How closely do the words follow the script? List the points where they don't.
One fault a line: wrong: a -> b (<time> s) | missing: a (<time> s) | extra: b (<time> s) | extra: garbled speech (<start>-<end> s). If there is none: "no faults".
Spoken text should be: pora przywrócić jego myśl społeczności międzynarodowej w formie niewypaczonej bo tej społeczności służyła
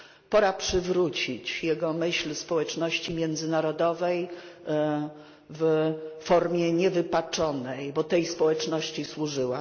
no faults